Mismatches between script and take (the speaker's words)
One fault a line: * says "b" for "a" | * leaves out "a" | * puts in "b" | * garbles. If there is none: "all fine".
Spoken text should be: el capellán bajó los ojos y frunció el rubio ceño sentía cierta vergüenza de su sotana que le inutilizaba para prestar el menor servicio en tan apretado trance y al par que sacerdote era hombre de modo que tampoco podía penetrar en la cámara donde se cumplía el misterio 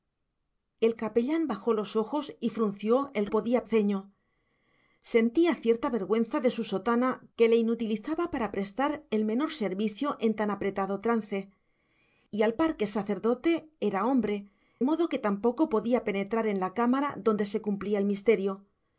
* says "podía" for "rubio"
* leaves out "de"